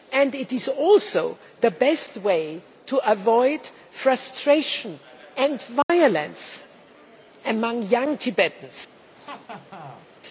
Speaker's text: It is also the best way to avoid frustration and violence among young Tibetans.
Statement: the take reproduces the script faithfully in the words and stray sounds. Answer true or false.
false